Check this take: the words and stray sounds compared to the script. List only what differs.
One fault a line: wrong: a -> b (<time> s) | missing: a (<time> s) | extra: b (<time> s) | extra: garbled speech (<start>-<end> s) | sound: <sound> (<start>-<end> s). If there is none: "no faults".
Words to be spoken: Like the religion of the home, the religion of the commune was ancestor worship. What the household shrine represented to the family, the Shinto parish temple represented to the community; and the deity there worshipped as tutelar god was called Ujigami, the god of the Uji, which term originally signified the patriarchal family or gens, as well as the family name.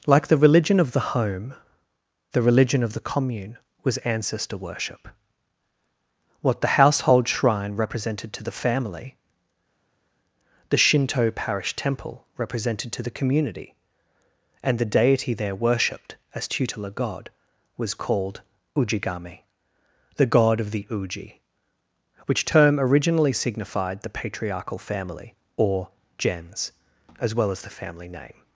no faults